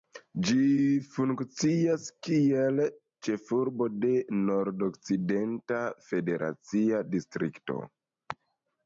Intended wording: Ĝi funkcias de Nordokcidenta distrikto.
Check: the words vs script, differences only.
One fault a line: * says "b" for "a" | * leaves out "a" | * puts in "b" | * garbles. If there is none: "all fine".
* puts in "kiel ĉefurbo"
* puts in "federacia"